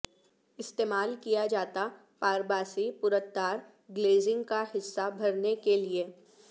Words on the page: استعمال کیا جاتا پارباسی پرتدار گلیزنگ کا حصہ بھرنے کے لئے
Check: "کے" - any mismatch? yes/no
no